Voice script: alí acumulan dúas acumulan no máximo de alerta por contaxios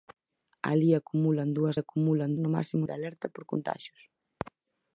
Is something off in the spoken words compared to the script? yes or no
no